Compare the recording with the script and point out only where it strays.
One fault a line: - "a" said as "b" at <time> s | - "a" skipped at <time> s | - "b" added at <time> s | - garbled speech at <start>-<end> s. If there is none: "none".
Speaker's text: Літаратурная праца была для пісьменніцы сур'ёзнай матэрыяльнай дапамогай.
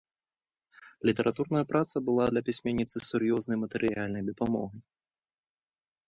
none